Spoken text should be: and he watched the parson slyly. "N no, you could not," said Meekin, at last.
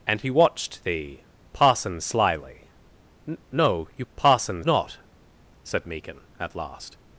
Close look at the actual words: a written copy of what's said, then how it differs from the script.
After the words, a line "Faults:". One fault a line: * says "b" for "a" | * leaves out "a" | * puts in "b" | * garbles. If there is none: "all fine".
and he watched the parson slyly. "N no, you parson not," said Meekin, at last.
Faults:
* says "parson" for "could"